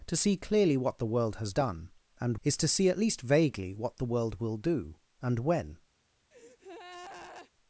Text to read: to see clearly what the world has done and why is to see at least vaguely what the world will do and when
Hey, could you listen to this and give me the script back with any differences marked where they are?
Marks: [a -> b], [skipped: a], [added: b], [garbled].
to see clearly what the world has done and [skipped: why] is to see at least vaguely what the world will do and when